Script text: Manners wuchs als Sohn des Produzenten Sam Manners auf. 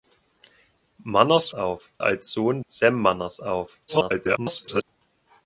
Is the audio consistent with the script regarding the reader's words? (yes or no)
no